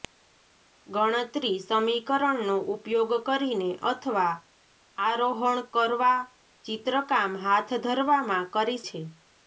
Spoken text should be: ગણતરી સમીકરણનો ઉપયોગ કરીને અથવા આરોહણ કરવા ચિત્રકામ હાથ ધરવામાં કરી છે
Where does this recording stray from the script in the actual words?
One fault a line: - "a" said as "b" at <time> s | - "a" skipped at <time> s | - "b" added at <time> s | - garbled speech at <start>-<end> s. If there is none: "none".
none